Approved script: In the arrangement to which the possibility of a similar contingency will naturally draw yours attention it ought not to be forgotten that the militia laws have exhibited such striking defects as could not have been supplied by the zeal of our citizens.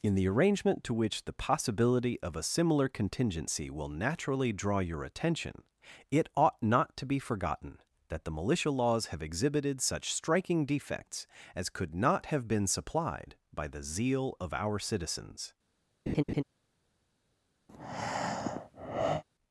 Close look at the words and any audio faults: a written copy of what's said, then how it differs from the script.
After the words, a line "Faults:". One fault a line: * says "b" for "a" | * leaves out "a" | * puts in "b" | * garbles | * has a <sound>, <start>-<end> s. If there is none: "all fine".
In the arrangement to which the possibility of a similar contingency will naturally draw your attention it ought not to be forgotten that the militia laws have exhibited such striking defects as could not have been supplied by the zeal of our citizens.
Faults:
* says "your" for "yours"
* has a laugh, 16.1-16.4 s
* has a breath, 17.7-19.2 s